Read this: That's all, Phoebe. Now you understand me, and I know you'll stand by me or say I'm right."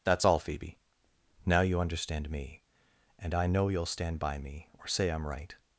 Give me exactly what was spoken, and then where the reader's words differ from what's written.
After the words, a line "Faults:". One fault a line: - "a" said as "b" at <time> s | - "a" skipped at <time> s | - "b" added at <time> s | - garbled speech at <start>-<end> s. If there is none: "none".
That's all, Phoebe. Now you understand me, and I know you'll stand by me or say I'm right."
Faults:
none